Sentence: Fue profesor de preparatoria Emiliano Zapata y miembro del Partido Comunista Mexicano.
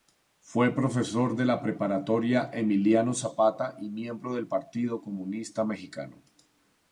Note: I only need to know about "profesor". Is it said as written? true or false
true